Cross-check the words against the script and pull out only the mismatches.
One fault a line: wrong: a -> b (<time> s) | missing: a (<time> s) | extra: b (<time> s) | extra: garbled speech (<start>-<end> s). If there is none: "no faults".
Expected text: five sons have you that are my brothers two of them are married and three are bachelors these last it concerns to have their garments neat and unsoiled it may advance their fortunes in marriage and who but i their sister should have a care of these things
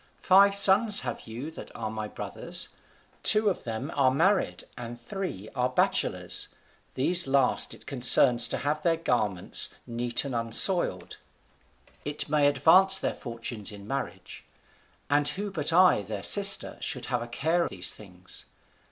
missing: of (17.6 s)